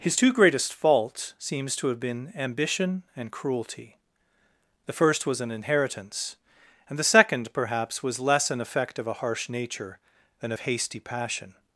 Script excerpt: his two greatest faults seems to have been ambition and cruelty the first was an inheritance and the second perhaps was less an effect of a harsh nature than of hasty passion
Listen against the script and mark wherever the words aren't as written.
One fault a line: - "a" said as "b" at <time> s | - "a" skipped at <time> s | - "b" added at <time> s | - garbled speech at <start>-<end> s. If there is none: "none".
none